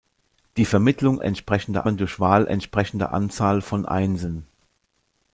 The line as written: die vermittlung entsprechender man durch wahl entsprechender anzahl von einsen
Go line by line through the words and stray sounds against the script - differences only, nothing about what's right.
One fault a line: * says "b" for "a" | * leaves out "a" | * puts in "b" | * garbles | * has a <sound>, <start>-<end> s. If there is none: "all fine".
all fine